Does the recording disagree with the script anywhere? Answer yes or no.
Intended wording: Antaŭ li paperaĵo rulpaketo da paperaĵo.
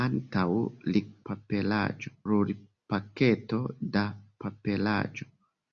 no